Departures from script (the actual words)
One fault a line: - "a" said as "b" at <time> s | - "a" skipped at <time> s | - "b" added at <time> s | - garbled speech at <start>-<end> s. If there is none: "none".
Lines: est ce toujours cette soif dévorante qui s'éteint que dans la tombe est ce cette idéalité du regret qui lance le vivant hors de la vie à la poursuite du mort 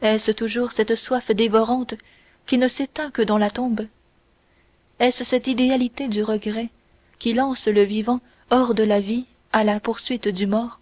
- "ne" added at 2.6 s